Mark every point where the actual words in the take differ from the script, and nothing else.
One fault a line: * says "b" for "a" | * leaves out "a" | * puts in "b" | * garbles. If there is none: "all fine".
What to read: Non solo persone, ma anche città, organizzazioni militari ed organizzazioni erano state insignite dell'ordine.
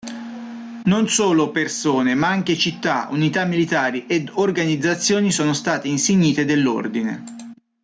* says "unità" for "organizzazioni"
* says "sono" for "erano"